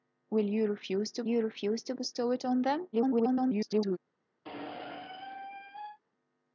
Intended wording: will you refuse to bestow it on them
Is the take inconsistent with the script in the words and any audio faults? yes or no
yes